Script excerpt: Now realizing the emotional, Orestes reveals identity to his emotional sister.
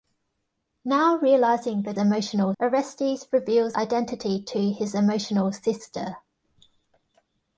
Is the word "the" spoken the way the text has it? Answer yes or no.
yes